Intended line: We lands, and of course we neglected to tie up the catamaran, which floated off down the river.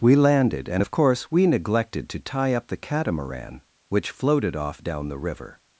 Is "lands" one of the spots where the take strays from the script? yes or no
yes